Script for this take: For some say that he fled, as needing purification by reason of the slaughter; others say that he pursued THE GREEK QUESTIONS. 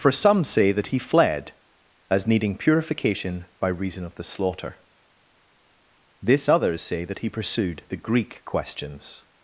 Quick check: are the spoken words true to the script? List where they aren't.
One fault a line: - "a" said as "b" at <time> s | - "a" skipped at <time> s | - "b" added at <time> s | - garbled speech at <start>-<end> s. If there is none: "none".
- "this" added at 6.2 s